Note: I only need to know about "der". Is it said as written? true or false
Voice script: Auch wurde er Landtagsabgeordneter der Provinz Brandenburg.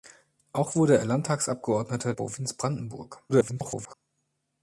false